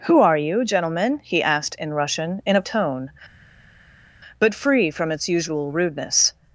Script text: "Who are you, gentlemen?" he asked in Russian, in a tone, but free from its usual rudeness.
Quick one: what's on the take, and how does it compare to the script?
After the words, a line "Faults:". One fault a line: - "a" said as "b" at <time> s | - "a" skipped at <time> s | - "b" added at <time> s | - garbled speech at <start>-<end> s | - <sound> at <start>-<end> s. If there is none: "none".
"Who are you, gentlemen?" he asked in Russian, in a tone, but free from its usual rudeness.
Faults:
none